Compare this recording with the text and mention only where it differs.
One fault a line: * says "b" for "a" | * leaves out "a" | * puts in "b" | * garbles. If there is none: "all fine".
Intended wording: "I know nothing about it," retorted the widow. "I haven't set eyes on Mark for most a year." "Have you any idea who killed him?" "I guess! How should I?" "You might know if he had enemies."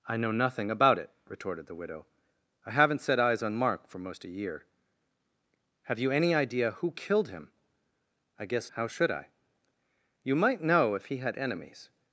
all fine